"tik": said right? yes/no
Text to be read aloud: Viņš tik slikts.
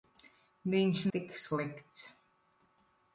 yes